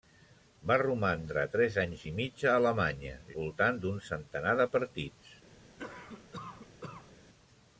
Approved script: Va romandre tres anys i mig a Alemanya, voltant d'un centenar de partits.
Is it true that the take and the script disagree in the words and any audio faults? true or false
true